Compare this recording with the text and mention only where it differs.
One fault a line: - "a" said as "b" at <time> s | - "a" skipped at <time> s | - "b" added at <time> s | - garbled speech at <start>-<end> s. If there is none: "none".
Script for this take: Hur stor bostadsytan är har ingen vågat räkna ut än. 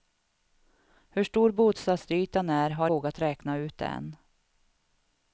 - "ingen" skipped at 2.9 s